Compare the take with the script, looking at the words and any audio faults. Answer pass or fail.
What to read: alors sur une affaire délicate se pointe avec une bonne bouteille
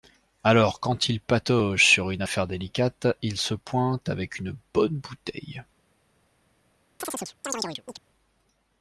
fail